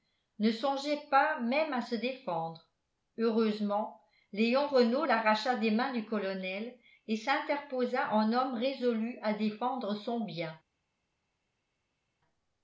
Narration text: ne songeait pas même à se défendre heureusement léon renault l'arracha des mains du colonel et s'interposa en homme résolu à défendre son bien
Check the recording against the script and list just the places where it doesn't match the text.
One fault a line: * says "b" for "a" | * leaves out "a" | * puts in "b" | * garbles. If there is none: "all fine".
all fine